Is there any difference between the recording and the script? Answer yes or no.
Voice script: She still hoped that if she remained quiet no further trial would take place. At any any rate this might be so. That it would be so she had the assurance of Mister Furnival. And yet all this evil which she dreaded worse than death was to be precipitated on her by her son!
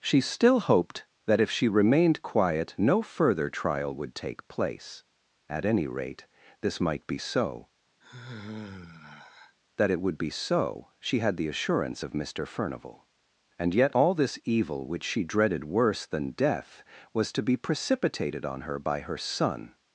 yes